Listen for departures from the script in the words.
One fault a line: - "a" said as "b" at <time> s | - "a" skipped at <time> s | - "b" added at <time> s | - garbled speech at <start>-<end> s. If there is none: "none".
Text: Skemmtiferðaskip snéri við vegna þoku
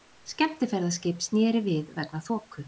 none